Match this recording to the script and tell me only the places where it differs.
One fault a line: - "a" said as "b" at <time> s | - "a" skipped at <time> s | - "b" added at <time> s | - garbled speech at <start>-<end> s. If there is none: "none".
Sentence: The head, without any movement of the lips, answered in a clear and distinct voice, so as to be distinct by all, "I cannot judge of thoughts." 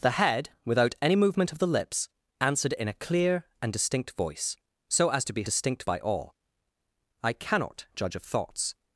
none